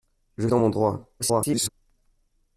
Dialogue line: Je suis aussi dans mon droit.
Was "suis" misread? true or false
true